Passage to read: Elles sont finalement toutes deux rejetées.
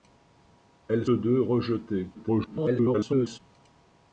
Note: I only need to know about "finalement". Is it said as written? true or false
false